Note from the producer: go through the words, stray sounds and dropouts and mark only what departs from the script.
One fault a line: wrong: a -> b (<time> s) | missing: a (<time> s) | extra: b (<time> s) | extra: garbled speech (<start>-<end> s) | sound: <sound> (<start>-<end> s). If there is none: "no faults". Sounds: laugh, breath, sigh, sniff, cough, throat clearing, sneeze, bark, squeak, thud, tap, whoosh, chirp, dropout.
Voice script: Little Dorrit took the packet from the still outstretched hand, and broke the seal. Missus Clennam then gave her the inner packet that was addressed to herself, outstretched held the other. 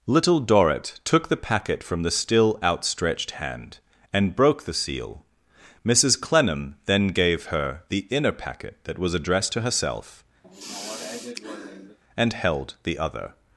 sound: sigh (10.4-12.0 s)
wrong: outstretched -> and (12.2 s)